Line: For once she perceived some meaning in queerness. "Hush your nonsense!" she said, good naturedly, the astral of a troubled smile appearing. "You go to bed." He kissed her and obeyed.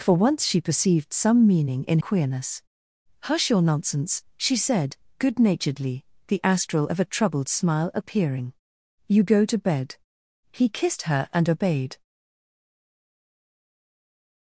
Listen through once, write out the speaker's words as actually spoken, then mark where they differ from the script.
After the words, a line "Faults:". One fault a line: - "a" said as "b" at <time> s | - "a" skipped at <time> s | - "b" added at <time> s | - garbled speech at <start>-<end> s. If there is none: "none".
For once she perceived some meaning in queerness. "Hush your nonsense!" she said, good naturedly, the astral of a troubled smile appearing. "You go to bed." He kissed her and obeyed.
Faults:
none